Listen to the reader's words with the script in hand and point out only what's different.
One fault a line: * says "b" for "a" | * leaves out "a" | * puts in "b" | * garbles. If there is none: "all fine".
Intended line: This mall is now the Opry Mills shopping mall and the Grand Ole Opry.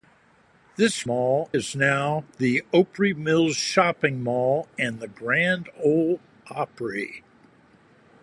all fine